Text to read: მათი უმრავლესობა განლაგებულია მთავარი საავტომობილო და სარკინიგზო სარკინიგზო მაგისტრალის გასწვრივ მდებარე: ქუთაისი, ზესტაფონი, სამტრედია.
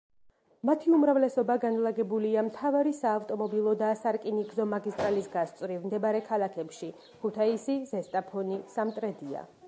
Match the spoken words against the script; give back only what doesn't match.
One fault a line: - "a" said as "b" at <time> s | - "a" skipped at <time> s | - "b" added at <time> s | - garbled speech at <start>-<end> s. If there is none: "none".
- "სარკინიგზო" skipped at 4.7 s
- "ქალაქებში" added at 6.3 s